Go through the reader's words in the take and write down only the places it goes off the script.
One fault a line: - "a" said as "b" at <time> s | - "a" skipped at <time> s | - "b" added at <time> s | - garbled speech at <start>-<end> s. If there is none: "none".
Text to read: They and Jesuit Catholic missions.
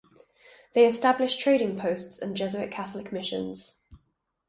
- "established trading posts" added at 0.9 s